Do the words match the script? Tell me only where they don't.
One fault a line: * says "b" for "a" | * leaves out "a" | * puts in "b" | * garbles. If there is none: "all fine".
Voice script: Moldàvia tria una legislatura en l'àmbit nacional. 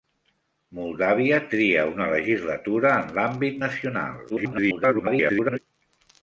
* garbles